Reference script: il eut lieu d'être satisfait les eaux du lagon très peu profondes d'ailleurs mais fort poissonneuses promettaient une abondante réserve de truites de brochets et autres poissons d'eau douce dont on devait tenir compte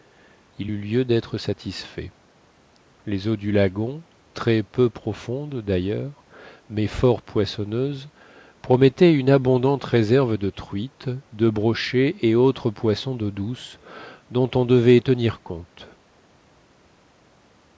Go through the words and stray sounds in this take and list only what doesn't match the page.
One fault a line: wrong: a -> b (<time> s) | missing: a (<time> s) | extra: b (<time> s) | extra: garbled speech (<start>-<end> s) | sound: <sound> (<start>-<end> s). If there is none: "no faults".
no faults